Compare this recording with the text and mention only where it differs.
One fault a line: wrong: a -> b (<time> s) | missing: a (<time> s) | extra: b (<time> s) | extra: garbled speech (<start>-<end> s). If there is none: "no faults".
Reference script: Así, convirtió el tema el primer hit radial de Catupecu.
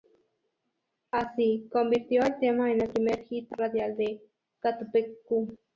extra: en (2.7 s)